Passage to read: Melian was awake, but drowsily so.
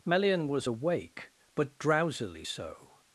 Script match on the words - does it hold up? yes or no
yes